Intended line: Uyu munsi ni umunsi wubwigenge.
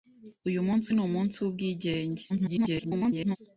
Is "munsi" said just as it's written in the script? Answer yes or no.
yes